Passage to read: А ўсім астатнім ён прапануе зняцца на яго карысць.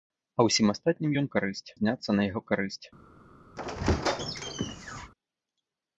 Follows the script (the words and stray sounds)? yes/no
no